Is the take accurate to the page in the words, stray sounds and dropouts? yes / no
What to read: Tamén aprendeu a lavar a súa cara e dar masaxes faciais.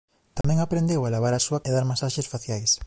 no